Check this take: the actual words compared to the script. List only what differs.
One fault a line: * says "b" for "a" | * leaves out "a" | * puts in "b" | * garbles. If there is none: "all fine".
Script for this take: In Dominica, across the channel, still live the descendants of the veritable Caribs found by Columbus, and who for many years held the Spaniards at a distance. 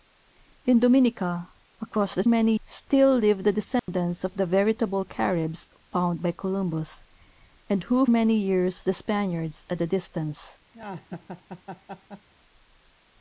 * says "many" for "channel"
* leaves out "for"
* leaves out "held"